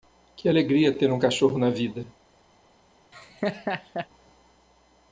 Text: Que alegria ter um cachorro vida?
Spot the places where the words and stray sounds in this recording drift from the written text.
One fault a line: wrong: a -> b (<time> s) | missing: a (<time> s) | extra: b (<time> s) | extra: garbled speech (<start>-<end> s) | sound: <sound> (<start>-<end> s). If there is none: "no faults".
extra: na (1.6 s)
sound: laugh (3.1-4.1 s)